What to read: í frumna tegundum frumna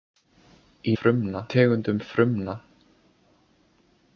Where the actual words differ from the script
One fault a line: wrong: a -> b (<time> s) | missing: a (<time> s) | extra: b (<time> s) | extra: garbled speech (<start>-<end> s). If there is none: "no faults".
no faults